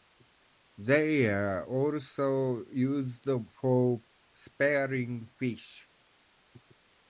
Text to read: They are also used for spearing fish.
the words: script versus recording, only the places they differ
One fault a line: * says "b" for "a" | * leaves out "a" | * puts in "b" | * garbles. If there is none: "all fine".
all fine